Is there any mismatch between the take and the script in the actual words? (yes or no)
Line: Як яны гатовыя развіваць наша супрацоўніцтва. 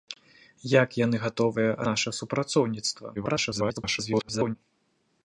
yes